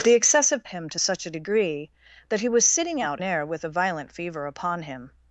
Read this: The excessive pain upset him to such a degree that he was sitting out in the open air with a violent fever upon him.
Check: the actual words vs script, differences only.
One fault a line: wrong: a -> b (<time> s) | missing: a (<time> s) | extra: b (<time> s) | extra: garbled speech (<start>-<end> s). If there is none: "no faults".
missing: pain upset (0.7 s)
missing: in the open (3.2 s)